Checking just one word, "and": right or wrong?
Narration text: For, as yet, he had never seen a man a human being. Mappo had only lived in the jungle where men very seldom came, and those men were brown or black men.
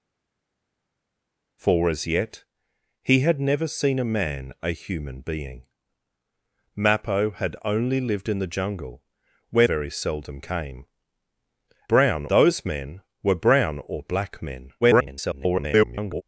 wrong